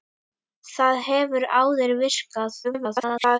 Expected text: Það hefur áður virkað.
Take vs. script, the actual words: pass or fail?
fail